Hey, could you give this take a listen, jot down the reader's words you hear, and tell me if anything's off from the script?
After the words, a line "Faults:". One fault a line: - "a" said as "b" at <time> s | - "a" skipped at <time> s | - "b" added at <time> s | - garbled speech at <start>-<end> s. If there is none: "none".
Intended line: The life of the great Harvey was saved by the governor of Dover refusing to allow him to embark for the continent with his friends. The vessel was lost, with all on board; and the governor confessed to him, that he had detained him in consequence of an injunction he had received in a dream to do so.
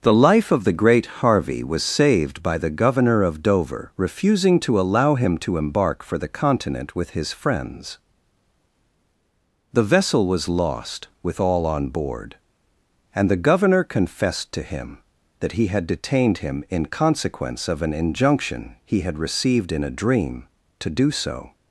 The life of the great Harvey was saved by the governor of Dover refusing to allow him to embark for the continent with his friends. The vessel was lost, with all on board; and the governor confessed to him, that he had detained him in consequence of an injunction he had received in a dream to do so.
Faults:
none